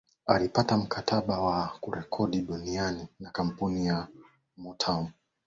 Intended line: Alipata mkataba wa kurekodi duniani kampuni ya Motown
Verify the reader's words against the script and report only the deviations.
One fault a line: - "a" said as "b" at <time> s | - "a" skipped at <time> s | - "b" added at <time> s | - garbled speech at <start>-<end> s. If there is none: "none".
- "na" added at 3.2 s